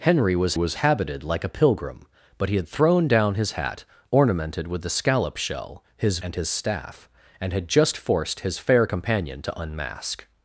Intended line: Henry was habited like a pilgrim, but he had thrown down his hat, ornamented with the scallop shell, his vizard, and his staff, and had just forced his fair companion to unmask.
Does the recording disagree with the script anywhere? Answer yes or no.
yes